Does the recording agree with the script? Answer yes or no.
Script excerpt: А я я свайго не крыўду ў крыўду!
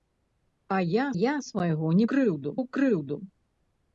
yes